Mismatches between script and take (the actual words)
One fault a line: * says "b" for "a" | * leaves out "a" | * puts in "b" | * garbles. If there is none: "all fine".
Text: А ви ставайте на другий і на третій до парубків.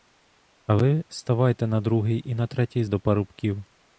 all fine